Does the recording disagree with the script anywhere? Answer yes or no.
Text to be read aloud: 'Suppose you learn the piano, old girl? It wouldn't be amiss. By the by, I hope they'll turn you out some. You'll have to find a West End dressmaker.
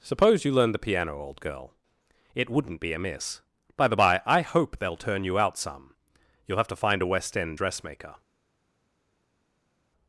no